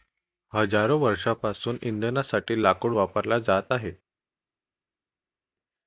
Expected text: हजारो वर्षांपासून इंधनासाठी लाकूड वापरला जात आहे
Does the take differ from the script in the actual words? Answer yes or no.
no